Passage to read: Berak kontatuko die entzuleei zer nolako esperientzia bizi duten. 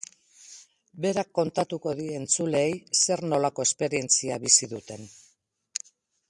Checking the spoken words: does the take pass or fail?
pass